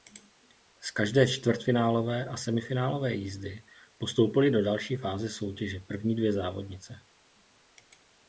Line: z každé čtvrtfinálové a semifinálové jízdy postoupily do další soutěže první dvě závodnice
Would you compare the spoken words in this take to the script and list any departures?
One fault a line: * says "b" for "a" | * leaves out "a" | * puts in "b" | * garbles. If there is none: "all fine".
* puts in "fáze"